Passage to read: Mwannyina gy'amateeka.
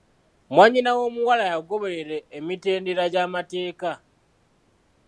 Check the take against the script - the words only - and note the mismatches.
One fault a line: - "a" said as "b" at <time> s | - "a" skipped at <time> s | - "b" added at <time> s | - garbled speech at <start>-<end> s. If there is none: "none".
- "w'omuwala yagoberera emitendera" added at 1.0 s